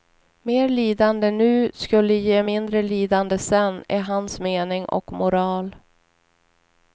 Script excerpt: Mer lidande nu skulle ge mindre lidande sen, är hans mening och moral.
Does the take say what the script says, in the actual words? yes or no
yes